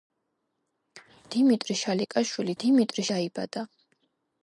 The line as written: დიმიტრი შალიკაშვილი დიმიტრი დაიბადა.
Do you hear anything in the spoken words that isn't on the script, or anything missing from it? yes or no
no